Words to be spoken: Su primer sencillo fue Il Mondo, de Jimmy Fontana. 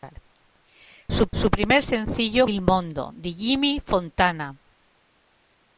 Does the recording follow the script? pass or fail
fail